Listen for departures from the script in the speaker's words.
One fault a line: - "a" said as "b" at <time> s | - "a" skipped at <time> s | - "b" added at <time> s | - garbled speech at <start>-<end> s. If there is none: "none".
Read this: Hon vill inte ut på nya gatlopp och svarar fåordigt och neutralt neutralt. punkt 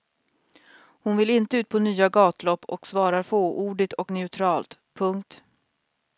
- "neutralt" skipped at 4.8 s